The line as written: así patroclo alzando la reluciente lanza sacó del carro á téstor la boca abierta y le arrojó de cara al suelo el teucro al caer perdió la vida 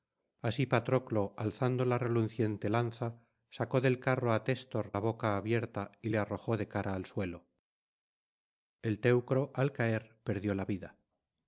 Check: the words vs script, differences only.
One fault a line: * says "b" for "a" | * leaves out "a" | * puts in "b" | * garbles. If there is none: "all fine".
all fine